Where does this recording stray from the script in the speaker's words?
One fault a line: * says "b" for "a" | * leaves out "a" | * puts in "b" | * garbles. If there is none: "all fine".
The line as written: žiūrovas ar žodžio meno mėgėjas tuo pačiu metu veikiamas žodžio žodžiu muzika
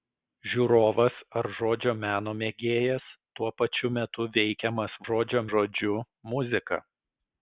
all fine